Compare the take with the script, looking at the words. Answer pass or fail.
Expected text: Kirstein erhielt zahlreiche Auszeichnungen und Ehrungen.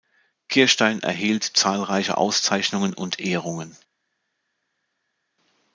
pass